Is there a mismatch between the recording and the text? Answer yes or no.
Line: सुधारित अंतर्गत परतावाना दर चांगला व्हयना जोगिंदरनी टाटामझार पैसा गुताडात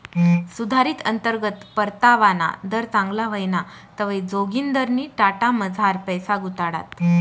yes